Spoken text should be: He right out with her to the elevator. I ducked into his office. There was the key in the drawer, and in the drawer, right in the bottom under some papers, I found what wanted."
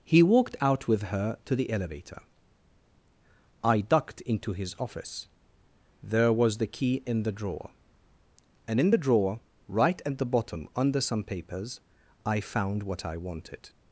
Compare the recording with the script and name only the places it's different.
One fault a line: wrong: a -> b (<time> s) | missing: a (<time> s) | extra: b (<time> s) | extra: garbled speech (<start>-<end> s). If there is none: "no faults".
wrong: right -> walked (0.2 s)
wrong: in -> at (10.1 s)
extra: I (13.0 s)